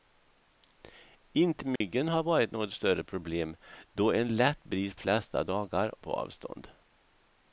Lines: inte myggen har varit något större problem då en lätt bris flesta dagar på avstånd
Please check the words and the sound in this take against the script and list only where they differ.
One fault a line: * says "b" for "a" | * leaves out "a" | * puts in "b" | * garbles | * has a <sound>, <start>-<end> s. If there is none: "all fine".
* has a dropout, 1.8-1.8 s